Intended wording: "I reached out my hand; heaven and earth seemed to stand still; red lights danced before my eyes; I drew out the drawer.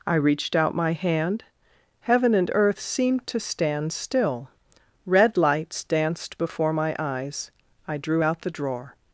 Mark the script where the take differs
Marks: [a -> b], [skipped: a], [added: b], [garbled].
"I reached out my hand; heaven and earth seemed to stand still; red lights danced before my eyes; I drew out the drawer.